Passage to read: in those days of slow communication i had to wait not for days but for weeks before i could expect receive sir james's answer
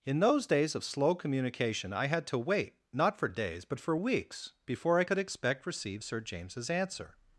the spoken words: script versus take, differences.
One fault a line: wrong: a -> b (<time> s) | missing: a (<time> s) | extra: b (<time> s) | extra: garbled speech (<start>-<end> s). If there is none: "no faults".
no faults